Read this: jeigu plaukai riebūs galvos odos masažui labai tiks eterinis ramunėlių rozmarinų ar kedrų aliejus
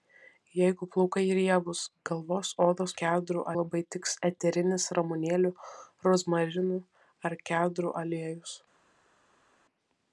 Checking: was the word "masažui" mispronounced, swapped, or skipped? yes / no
yes